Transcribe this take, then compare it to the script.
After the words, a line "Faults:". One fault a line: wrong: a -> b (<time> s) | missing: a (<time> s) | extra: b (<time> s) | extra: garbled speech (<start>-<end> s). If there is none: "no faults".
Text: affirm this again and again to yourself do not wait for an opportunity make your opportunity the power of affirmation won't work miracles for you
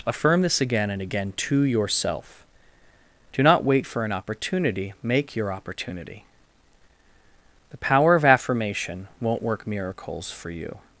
affirm this again and again to yourself do not wait for an opportunity make your opportunity the power of affirmation won't work miracles for you
Faults:
no faults